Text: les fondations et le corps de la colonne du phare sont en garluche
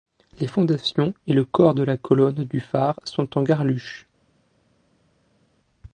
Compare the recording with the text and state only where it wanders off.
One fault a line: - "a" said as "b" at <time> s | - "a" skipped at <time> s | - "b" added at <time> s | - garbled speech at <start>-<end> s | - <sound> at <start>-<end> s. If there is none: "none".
none